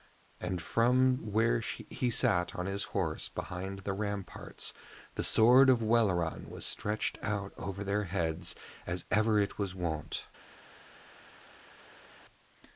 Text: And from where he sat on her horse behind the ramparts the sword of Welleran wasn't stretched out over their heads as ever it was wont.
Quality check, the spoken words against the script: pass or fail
fail